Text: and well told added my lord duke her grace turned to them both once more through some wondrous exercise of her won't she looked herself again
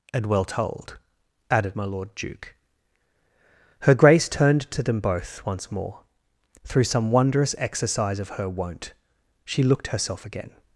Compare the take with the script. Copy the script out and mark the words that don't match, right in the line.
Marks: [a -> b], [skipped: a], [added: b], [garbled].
and well told added my lord duke her grace turned to them both once more through some wondrous exercise of her won't she looked herself again